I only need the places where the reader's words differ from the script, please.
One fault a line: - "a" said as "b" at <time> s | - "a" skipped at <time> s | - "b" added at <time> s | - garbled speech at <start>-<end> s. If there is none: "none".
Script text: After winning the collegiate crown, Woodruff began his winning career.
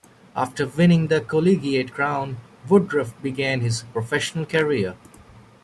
- "winning" said as "professional" at 3.9 s